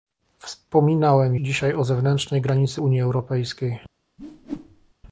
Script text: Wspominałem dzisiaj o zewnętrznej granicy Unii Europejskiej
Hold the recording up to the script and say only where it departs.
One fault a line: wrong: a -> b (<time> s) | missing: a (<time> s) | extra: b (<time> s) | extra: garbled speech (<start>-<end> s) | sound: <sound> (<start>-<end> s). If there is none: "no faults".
sound: whoosh (4.2-4.9 s)